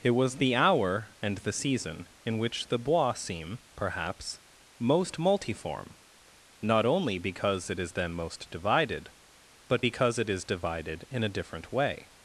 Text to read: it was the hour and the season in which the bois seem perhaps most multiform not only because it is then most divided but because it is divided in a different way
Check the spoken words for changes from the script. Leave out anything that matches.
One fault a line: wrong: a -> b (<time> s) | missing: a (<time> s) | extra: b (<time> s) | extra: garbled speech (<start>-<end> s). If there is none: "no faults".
no faults